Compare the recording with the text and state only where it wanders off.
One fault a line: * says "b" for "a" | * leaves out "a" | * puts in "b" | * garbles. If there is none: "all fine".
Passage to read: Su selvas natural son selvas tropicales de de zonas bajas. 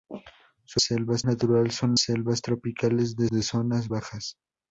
all fine